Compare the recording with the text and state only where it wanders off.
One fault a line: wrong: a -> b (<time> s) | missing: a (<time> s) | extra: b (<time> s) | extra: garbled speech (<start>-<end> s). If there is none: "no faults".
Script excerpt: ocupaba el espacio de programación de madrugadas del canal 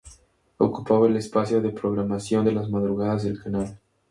extra: las (2.5 s)